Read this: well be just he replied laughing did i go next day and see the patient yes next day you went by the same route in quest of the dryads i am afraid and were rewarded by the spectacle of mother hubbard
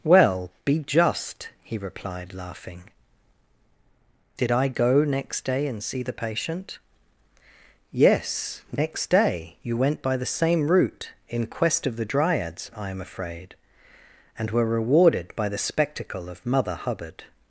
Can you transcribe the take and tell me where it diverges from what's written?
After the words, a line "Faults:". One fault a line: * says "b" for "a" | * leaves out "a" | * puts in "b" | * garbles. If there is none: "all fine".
well be just he replied laughing did i go next day and see the patient yes next day you went by the same route in quest of the dryads i am afraid and were rewarded by the spectacle of mother hubbard
Faults:
all fine